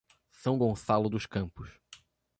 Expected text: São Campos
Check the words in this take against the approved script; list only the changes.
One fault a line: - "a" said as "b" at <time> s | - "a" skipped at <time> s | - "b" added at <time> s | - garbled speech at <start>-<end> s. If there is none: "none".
- "Gonçalo dos" added at 0.5 s